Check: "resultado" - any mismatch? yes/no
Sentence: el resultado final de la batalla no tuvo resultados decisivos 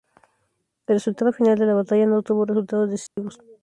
no